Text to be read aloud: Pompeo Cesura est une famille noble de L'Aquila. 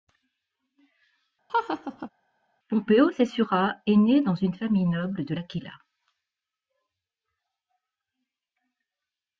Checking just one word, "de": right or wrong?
right